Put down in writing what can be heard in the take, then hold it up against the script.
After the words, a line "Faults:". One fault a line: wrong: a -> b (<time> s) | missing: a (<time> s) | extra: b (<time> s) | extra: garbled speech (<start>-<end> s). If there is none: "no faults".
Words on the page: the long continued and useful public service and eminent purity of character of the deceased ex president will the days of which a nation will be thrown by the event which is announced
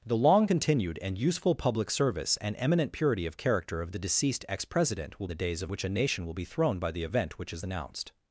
the long continued and useful public service and eminent purity of character of the deceased ex president will the days of which a nation will be thrown by the event which is announced
Faults:
no faults